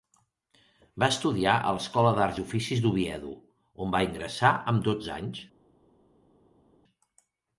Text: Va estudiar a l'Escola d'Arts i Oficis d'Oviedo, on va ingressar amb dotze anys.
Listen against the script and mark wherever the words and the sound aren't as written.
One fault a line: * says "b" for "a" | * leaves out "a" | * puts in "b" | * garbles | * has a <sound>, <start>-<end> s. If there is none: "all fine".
all fine